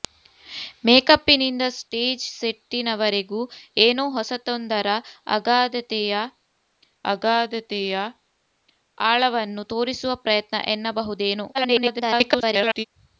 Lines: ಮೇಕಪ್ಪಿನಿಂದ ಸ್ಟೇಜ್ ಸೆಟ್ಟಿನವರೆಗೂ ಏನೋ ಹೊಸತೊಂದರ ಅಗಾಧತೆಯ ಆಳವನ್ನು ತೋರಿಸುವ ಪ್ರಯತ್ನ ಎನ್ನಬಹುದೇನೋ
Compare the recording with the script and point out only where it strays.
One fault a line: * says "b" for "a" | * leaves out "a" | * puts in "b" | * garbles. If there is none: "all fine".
* puts in "ಅಗಾಧತೆಯ"
* garbles